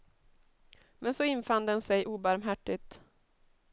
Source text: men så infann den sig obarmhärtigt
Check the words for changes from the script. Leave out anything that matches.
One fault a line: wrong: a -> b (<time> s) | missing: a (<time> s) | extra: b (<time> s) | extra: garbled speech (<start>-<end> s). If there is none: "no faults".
no faults